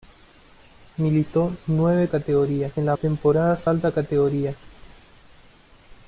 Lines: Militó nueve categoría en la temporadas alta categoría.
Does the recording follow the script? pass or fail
pass